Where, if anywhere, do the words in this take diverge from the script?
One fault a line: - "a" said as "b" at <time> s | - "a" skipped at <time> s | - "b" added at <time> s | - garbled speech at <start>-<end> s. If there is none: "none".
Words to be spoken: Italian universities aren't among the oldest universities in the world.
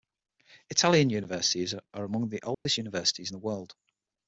- "aren't" said as "are" at 1.9 s